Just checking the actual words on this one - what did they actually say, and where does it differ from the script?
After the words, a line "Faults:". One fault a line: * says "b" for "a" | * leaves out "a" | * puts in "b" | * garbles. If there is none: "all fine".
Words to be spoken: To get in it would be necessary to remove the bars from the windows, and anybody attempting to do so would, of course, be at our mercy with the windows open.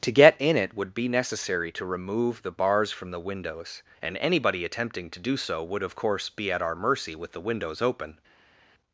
To get in it would be necessary to remove the bars from the windows, and anybody attempting to do so would, of course, be at our mercy with the windows open.
Faults:
all fine